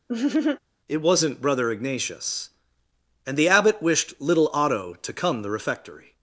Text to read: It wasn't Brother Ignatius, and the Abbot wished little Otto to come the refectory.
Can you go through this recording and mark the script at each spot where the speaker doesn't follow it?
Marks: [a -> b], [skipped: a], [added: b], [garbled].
It wasn't Brother Ignatius, and the Abbot wished little Otto to come the refectory.